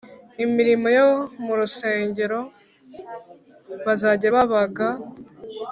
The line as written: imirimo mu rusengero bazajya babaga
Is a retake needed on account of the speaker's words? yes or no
yes